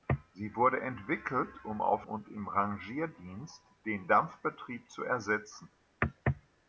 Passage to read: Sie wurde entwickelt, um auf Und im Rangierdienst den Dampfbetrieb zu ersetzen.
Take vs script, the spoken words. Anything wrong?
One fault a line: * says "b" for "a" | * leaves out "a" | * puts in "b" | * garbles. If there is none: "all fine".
all fine